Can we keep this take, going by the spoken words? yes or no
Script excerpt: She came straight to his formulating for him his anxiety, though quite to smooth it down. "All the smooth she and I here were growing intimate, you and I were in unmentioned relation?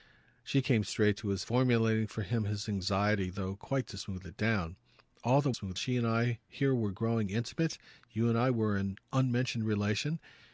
yes